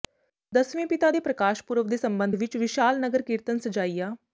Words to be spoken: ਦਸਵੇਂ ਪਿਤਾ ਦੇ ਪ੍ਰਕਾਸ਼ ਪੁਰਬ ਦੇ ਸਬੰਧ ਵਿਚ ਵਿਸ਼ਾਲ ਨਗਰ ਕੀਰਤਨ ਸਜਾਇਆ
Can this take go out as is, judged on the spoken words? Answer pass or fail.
pass